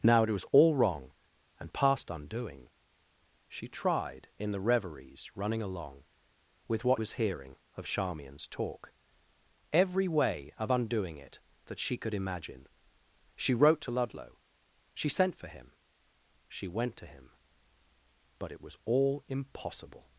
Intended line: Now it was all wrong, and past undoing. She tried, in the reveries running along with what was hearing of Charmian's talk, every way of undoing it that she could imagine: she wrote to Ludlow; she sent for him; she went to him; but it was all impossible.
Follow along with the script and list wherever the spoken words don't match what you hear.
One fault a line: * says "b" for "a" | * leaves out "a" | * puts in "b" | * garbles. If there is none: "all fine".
all fine